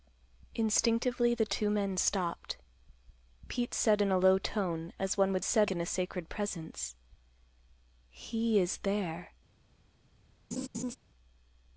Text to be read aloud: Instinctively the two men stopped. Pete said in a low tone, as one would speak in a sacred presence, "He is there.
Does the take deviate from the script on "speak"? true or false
true